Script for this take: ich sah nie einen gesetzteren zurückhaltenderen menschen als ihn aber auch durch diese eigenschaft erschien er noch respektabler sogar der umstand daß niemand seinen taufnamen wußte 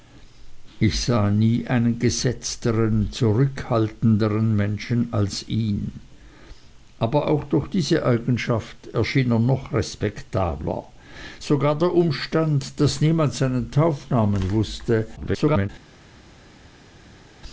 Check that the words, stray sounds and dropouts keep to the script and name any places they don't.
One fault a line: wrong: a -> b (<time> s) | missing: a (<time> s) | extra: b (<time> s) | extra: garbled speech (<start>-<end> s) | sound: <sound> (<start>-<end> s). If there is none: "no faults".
extra: garbled speech (15.2-15.7 s)